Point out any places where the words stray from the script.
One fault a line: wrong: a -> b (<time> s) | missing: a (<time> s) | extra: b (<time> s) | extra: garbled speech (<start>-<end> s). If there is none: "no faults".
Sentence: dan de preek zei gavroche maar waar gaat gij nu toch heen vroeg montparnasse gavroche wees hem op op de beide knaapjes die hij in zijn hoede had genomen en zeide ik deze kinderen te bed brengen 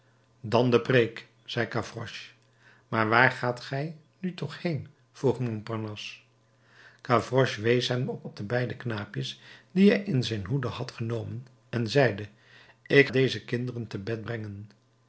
no faults